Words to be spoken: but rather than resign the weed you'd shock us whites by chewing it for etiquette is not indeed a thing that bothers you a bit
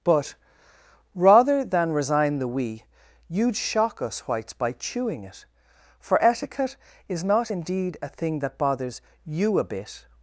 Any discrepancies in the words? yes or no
yes